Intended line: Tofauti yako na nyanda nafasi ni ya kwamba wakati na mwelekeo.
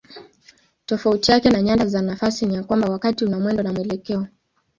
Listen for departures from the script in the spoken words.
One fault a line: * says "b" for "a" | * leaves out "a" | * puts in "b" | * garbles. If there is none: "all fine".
* says "yake" for "yako"
* puts in "za"
* puts in "una mwendo"